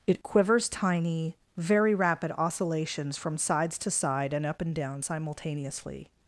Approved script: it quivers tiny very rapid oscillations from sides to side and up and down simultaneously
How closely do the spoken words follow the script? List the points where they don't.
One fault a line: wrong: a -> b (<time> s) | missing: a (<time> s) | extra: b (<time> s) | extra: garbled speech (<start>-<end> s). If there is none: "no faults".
no faults